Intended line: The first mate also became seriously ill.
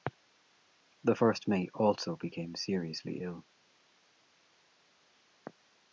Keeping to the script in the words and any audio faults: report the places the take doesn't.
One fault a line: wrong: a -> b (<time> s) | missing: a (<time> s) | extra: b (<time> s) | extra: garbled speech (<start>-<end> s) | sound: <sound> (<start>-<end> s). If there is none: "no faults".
no faults